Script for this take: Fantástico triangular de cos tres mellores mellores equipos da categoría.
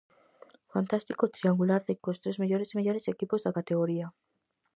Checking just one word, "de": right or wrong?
right